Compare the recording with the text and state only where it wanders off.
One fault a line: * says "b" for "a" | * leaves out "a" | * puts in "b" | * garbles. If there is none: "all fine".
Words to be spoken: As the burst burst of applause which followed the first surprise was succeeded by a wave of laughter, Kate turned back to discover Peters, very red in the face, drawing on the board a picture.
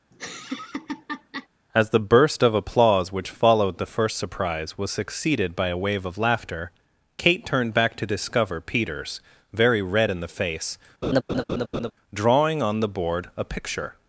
* leaves out "burst"